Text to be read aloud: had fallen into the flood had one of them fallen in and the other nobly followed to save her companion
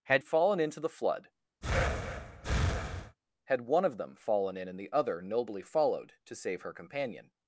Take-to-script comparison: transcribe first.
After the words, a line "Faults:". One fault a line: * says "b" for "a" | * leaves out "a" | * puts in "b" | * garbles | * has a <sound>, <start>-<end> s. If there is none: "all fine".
had fallen into the flood had one of them fallen in and the other nobly followed to save her companion
Faults:
* has a breath, 1.6-3.2 s